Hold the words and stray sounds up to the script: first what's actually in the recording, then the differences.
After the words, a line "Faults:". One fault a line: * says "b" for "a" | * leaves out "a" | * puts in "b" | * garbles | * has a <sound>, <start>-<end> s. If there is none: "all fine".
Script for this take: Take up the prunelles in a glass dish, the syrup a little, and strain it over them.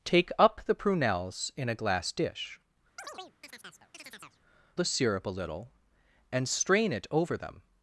Take up the prunelles in a glass dish, the syrup a little, and strain it over them.
Faults:
* has a chirp, 3.0-4.4 s